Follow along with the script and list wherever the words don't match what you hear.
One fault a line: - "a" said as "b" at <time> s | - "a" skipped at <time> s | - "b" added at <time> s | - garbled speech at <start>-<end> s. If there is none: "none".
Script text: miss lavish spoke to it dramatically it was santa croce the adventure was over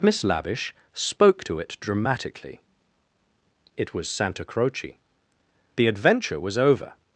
none